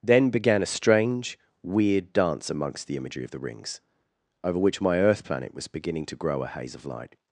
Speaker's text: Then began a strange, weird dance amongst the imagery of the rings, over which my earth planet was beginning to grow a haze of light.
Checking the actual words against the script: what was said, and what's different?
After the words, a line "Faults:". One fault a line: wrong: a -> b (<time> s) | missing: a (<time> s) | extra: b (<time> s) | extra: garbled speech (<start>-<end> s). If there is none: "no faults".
Then began a strange, weird dance amongst the imagery of the rings, over which my earth planet was beginning to grow a haze of light.
Faults:
no faults